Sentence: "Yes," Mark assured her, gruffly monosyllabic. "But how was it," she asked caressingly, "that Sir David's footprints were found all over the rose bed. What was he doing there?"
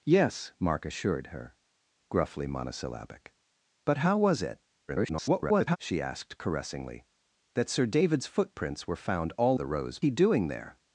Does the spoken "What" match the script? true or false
false